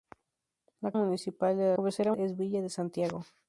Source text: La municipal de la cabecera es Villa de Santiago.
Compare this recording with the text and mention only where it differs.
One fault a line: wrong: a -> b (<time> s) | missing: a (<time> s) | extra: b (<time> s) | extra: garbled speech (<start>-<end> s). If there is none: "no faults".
no faults